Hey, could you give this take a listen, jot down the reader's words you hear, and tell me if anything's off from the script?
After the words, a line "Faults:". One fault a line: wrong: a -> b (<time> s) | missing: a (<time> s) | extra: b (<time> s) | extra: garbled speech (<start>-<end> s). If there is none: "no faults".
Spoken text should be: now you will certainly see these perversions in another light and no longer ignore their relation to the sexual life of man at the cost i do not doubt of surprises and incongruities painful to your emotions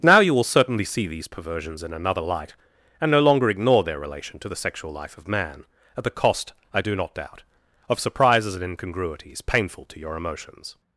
now you will certainly see these perversions in another light and no longer ignore their relation to the sexual life of man at the cost i do not doubt of surprises and incongruities painful to your emotions
Faults:
no faults